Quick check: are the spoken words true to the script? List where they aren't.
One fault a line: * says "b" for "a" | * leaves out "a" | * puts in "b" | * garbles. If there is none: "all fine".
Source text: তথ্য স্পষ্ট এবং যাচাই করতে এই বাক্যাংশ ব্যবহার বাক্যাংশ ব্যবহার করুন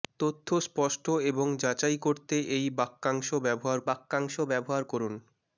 all fine